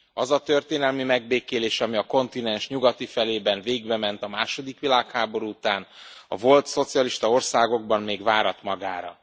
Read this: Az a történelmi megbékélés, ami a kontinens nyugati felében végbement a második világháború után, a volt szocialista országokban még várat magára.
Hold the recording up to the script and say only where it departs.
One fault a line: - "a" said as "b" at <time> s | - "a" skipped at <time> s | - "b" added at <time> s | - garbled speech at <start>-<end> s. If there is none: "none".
none